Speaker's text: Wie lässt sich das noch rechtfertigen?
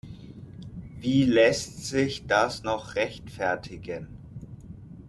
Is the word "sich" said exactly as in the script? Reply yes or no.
yes